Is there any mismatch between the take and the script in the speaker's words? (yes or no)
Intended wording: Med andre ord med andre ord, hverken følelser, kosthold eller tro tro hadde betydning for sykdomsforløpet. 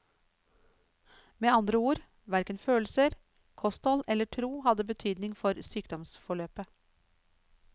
yes